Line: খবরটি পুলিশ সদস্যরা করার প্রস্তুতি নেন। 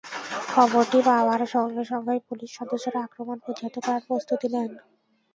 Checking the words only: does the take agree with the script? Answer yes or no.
no